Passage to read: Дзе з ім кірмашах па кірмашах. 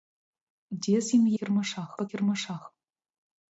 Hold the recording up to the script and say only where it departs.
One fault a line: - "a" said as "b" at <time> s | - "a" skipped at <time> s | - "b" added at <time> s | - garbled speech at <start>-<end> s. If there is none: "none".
none